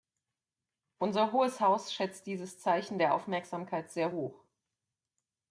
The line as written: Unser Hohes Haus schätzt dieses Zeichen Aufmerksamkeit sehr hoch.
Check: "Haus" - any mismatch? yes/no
no